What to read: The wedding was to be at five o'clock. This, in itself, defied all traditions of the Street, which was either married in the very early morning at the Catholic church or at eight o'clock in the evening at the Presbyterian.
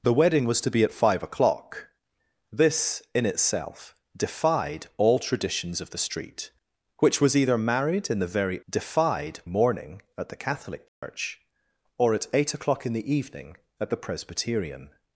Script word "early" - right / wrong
wrong